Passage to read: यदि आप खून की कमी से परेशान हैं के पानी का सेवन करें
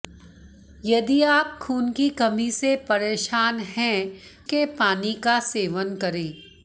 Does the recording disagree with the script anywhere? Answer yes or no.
no